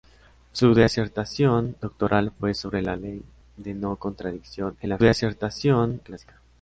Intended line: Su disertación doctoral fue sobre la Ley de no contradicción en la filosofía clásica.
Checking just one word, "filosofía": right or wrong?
wrong